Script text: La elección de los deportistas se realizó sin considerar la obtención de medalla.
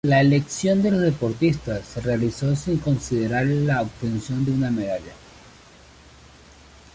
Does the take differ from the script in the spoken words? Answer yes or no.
yes